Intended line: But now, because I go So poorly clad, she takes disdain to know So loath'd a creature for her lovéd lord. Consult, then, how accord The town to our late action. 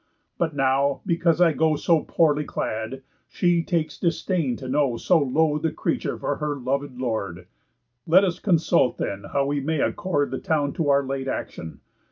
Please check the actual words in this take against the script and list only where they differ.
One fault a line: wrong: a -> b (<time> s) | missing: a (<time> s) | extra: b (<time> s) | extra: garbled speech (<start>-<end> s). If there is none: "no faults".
extra: Let us (8.0 s)
extra: we may (9.4 s)